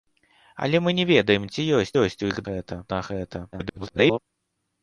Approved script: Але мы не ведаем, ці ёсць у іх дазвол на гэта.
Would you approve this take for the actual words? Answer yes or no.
no